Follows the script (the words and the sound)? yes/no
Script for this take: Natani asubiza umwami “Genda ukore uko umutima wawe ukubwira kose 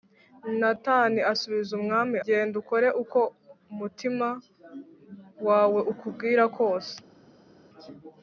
yes